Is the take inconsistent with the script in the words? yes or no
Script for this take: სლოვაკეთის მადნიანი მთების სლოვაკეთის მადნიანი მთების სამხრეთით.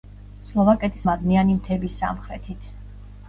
yes